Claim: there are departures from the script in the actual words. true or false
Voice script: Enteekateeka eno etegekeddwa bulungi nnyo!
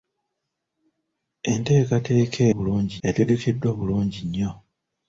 true